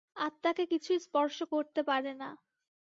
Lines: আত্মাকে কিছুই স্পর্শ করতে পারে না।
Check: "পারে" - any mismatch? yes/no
no